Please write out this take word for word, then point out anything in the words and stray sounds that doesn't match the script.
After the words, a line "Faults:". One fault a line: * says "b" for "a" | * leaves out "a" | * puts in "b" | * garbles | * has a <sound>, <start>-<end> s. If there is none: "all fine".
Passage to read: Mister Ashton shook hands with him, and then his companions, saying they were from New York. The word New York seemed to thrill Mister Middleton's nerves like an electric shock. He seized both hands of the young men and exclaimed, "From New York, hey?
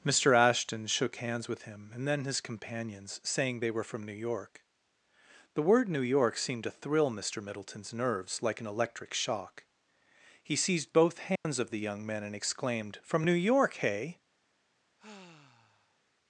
Mister Ashton shook hands with him, and then his companions, saying they were from New York. The word New York seemed to thrill Mister Middleton's nerves like an electric shock. He seized both hands of the young men and exclaimed, "From New York, hey?
Faults:
* has a dropout, 11.4-11.4 s
* has a sigh, 15.0-16.0 s